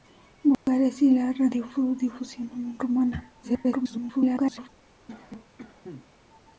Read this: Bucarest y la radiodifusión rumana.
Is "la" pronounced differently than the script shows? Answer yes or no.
no